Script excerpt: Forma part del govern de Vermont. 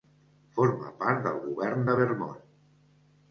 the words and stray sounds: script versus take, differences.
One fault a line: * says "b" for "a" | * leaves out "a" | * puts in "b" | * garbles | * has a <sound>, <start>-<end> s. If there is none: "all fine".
all fine